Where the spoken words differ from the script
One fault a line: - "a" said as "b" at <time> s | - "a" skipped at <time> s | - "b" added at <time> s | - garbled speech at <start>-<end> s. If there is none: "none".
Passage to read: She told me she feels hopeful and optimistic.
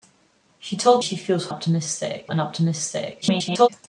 - "me" skipped at 1.0 s
- "hopeful" said as "optimistic" at 1.5 s
- garbled speech at 3.2-3.7 s